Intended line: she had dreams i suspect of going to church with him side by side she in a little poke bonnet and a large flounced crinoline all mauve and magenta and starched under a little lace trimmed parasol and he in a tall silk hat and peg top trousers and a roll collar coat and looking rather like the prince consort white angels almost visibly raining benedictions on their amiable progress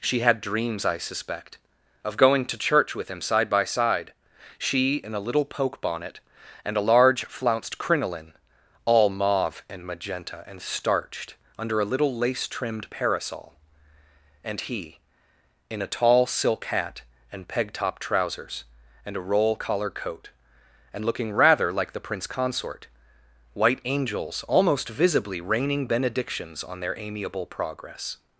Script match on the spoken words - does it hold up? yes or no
yes